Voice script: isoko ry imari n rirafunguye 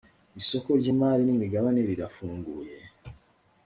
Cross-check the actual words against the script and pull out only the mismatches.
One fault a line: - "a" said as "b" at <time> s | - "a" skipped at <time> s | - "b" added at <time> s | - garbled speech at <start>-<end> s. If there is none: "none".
- "imigabane" added at 1.3 s